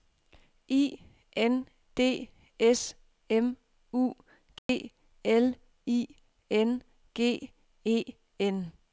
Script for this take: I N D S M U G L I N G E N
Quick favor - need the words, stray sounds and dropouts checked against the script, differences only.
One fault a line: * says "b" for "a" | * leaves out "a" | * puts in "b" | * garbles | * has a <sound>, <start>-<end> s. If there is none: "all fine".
* has a dropout, 4.6-4.7 s